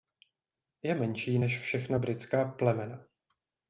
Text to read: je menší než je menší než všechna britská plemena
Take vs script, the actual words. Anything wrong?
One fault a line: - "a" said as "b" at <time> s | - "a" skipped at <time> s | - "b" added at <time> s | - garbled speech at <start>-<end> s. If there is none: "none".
- "je menší než" skipped at 1.6 s